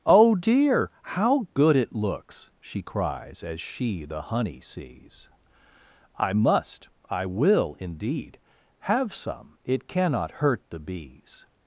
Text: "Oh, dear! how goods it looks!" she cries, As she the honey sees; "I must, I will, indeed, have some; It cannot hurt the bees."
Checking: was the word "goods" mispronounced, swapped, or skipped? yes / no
yes